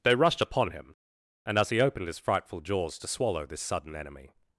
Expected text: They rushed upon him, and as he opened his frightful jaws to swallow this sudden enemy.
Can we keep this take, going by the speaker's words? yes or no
yes